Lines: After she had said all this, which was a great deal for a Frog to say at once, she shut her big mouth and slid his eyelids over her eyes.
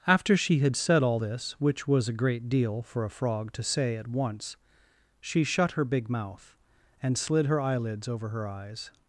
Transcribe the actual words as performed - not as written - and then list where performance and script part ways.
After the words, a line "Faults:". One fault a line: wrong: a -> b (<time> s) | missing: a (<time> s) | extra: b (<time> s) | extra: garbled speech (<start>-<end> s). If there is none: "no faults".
After she had said all this, which was a great deal for a Frog to say at once, she shut her big mouth and slid her eyelids over her eyes.
Faults:
wrong: his -> her (7.5 s)